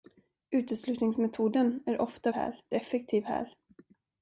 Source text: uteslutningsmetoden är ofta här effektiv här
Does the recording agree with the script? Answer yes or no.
yes